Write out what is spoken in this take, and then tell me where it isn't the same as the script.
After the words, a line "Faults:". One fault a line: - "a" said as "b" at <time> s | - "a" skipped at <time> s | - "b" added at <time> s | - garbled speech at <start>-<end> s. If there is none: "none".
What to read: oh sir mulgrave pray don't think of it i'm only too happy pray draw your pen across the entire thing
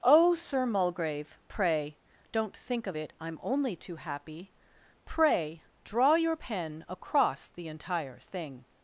oh sir mulgrave pray don't think of it i'm only too happy pray draw your pen across the entire thing
Faults:
none